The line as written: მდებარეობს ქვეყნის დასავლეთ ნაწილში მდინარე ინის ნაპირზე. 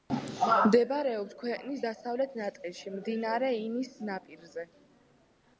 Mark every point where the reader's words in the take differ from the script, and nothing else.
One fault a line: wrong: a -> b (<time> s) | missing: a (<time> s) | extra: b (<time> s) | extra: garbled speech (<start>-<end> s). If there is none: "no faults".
no faults